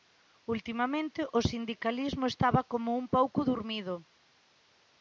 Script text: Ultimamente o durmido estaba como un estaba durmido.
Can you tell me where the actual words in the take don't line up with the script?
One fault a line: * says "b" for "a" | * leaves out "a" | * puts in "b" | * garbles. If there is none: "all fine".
* says "sindicalismo" for "durmido"
* says "pouco" for "estaba"